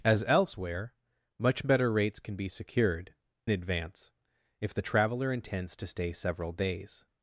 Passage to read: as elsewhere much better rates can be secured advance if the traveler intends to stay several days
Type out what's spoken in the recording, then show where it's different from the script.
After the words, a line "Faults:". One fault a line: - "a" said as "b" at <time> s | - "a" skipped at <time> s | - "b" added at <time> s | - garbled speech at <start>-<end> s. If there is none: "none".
as elsewhere much better rates can be secured advance if the traveler intends to stay several days
Faults:
none